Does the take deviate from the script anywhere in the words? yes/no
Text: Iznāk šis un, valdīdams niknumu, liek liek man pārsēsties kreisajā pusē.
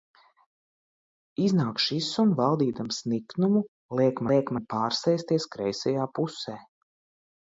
no